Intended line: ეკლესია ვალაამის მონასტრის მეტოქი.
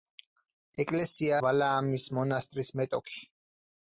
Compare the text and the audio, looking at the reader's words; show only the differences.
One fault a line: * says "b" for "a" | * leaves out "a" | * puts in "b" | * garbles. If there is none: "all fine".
all fine